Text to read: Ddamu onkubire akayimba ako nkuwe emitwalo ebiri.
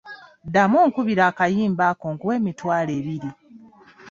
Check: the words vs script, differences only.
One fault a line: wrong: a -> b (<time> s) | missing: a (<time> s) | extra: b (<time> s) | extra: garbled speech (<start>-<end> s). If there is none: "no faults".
no faults